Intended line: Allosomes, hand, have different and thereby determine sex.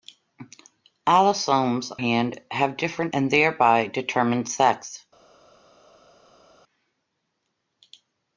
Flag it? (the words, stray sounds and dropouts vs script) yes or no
no